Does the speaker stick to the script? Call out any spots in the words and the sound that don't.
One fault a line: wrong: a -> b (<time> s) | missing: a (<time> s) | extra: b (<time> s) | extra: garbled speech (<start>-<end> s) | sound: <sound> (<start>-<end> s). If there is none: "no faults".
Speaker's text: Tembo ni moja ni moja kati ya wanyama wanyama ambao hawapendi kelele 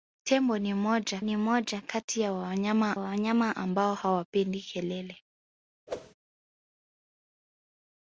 sound: whoosh (5.9-6.1 s)